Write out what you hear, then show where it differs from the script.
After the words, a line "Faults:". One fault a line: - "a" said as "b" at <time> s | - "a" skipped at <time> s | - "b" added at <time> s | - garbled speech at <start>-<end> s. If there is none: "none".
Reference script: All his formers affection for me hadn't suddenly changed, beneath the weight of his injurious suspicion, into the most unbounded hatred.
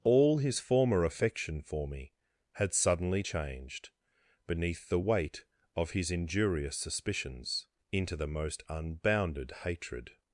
All his former affection for me had suddenly changed, beneath the weight of his injurious suspicions, into the most unbounded hatred.
Faults:
- "formers" said as "former" at 0.6 s
- "hadn't" said as "had" at 2.5 s
- "suspicion" said as "suspicions" at 6.7 s